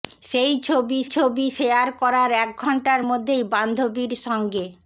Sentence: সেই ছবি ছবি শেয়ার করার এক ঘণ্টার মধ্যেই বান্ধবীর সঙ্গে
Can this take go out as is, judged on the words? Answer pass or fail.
pass